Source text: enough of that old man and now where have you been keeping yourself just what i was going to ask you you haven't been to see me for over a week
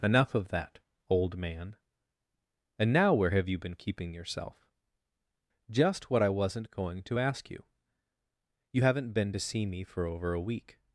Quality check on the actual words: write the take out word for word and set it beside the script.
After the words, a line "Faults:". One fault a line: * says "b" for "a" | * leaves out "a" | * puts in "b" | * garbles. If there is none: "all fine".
enough of that old man and now where have you been keeping yourself just what i wasn't going to ask you you haven't been to see me for over a week
Faults:
* says "wasn't" for "was"